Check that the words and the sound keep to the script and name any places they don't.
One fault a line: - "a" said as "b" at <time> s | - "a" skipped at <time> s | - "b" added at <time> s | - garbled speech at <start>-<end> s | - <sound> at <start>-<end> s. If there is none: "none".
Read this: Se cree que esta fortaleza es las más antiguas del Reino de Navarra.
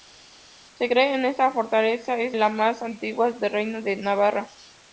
none